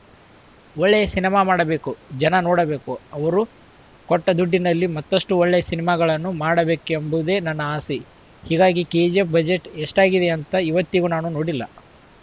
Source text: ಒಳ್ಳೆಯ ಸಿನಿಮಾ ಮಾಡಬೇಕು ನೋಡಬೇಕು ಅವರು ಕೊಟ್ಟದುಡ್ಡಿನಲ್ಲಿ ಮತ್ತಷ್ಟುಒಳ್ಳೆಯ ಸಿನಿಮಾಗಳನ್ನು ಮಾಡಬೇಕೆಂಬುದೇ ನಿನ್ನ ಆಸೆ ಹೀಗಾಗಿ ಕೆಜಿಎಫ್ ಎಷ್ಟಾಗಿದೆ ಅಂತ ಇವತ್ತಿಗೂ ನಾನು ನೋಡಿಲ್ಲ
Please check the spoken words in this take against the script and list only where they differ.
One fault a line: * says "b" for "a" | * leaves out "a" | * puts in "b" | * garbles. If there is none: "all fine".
* puts in "ಜನ"
* says "ನನ್ನ" for "ನಿನ್ನ"
* puts in "ಬಜೆಟ್"